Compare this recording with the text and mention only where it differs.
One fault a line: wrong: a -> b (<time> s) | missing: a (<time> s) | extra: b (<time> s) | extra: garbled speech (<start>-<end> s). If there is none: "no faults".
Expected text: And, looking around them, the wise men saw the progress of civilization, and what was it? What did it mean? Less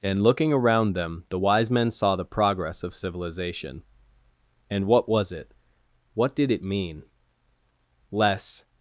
no faults